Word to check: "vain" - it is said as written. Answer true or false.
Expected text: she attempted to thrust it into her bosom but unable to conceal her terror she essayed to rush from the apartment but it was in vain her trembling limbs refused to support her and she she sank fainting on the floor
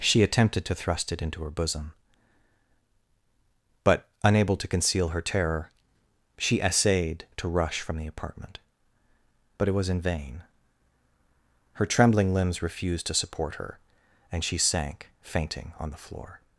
true